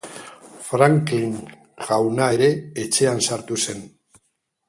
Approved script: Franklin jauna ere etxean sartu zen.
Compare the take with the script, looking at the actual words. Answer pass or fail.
pass